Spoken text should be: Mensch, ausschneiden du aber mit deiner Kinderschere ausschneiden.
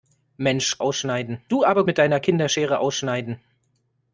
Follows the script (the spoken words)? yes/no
yes